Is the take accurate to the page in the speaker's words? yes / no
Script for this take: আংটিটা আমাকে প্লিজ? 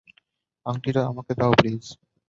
no